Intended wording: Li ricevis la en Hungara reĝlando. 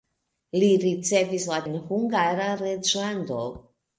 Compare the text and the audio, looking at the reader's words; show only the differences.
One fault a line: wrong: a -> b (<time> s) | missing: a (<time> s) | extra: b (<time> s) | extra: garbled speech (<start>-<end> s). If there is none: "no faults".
no faults